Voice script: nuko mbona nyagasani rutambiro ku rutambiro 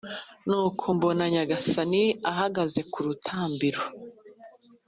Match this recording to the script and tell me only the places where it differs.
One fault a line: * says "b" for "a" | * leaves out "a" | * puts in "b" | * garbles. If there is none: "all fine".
* says "ahagaze" for "rutambiro"